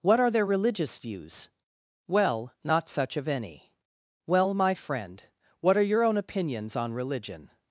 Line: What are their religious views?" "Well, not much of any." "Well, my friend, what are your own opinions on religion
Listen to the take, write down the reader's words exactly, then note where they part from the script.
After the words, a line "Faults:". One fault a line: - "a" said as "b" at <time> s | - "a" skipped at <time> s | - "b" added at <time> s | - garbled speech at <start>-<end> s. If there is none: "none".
What are their religious views?" "Well, not such of any." "Well, my friend, what are your own opinions on religion
Faults:
- "much" said as "such" at 2.9 s